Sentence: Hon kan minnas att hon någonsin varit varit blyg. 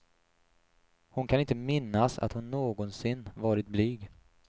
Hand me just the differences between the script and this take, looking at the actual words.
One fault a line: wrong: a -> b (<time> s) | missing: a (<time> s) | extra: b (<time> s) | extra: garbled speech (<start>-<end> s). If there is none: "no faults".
extra: inte (1.4 s)
missing: varit (3.7 s)